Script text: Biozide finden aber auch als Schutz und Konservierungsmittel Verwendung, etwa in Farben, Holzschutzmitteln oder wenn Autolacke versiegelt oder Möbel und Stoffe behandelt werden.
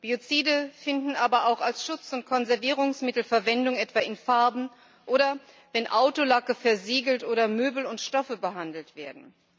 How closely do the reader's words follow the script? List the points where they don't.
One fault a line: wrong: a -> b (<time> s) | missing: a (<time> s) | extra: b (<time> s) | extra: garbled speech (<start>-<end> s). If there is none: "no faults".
missing: Holzschutzmitteln (4.7 s)